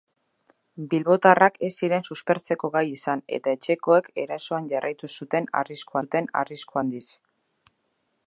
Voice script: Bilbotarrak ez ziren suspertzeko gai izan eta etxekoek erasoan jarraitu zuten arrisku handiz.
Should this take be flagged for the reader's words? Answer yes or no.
yes